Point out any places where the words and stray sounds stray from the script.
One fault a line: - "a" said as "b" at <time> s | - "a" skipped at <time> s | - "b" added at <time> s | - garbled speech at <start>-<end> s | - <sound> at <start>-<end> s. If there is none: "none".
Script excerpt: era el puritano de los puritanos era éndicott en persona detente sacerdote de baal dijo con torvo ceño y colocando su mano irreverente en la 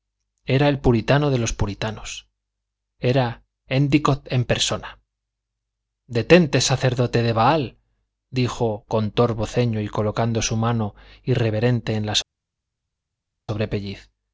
none